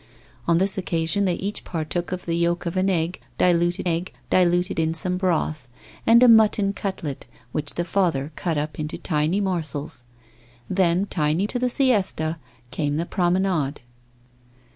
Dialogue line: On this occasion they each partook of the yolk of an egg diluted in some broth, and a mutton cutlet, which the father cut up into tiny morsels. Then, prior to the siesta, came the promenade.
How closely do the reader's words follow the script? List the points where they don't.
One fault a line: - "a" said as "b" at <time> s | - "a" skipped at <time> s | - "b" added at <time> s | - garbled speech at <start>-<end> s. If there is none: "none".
- "egg diluted" added at 3.8 s
- "prior" said as "tiny" at 11.0 s